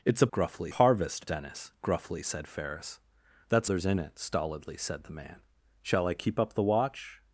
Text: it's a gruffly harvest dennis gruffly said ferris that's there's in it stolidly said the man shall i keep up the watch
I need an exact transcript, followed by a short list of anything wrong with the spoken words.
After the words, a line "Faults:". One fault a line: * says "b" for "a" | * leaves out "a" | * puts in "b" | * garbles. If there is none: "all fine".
it's a gruffly harvest dennis gruffly said ferris that's there's in it stolidly said the man shall i keep up the watch
Faults:
all fine